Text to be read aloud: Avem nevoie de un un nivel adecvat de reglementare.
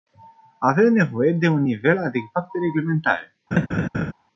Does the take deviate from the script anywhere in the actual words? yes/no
yes